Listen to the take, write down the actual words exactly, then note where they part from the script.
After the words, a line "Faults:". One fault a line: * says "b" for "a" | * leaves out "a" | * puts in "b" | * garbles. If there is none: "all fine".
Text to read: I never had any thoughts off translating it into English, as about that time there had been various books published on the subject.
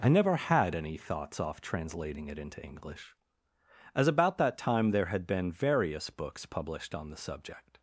I never had any thoughts off translating it into English, as about that time there had been various books published on the subject.
Faults:
all fine